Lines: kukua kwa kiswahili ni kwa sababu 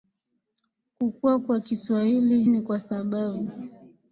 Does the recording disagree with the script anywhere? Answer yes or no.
no